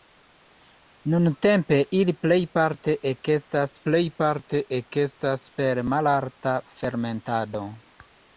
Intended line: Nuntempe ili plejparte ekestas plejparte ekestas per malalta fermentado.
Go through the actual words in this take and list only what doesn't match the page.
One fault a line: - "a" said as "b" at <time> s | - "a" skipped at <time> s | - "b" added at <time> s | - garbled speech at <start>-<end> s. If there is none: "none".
none